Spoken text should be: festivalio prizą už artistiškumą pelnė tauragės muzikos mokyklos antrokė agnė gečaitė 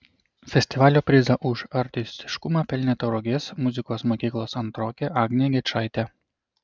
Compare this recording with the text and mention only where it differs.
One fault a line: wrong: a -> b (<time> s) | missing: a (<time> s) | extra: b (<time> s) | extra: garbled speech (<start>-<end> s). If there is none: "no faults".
no faults